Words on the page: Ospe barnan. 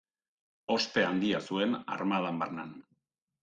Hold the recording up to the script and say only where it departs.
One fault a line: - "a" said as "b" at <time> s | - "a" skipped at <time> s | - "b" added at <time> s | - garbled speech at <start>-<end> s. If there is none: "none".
- "handia zuen armadan" added at 1.1 s